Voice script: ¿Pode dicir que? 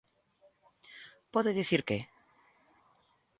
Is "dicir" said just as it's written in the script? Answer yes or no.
yes